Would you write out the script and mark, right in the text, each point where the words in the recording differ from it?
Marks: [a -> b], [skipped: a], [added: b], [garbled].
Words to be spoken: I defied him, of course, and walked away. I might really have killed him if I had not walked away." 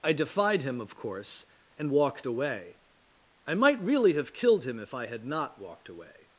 I defied him, of course, and walked away. I might really have killed him if I had not walked away."